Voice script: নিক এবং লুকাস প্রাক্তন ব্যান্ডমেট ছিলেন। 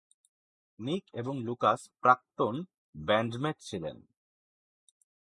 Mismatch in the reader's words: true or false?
false